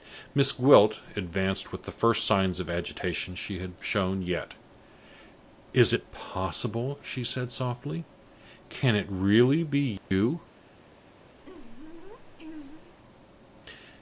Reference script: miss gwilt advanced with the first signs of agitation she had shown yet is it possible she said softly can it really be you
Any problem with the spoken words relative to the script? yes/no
no